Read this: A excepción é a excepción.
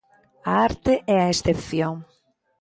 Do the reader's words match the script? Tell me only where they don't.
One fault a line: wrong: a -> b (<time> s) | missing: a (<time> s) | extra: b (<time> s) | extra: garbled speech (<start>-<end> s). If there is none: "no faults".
wrong: excepción -> arte (0.7 s)